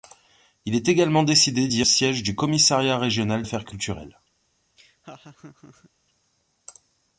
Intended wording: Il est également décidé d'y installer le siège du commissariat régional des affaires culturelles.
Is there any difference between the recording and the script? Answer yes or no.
yes